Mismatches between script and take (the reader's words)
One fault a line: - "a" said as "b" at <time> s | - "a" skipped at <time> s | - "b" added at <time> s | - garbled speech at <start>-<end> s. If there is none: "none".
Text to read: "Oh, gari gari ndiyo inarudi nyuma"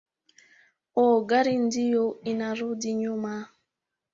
- "gari" skipped at 1.6 s